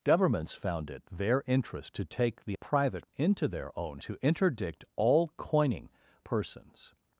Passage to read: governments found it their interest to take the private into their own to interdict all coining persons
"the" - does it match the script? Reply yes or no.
yes